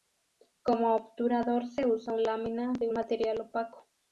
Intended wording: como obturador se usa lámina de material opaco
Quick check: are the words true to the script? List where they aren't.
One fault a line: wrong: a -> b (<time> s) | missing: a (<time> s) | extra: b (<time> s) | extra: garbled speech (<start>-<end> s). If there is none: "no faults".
no faults